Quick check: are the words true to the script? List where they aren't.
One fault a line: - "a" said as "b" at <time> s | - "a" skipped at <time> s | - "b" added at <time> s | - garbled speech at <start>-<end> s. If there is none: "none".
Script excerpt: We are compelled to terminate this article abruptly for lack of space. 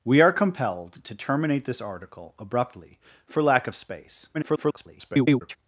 - garbled speech at 4.3-5.6 s